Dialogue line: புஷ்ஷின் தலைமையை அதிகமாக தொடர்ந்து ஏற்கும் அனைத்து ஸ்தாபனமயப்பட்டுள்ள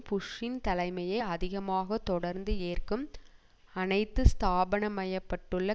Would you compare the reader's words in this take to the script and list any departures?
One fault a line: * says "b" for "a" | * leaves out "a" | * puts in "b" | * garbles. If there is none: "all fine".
all fine